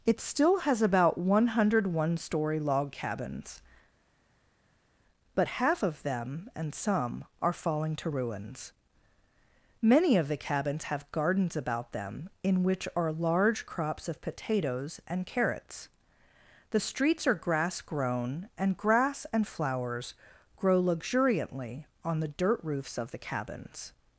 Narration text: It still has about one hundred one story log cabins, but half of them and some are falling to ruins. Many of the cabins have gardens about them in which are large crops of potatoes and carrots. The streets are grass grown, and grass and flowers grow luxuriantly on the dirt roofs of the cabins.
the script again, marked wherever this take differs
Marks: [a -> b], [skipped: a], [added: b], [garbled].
It still has about one hundred one story log cabins, but half of them and some are falling to ruins. Many of the cabins have gardens about them in which are large crops of potatoes and carrots. The streets are grass grown, and grass and flowers grow luxuriantly on the dirt roofs of the cabins.